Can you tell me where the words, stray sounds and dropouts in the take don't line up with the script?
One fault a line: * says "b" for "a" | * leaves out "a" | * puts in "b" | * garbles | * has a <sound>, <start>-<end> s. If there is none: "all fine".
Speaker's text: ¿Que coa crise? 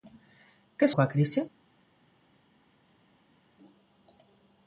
all fine